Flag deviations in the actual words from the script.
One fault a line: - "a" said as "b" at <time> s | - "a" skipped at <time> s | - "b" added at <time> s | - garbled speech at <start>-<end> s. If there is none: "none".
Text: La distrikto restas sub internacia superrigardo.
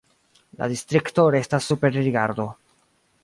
- "sub internacia" skipped at 1.7 s